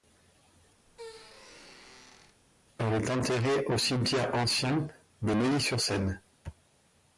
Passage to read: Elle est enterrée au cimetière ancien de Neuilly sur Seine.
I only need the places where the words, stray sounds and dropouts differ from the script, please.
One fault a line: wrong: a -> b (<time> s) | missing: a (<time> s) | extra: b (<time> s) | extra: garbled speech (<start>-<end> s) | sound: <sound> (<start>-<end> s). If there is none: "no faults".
sound: squeak (0.9-2.4 s)